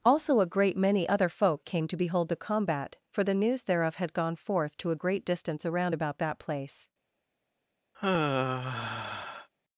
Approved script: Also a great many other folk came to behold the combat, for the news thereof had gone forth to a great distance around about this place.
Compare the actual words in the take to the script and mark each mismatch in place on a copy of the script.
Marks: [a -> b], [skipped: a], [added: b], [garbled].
Also a great many other folk came to behold the combat, for the news thereof had gone forth to a great distance around about [this -> that] place.